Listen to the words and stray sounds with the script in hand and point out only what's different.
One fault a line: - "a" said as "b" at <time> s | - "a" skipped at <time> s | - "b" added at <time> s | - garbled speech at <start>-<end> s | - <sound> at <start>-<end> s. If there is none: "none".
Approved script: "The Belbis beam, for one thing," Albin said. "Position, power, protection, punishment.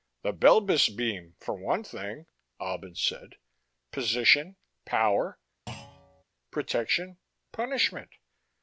- thud at 5.7-6.2 s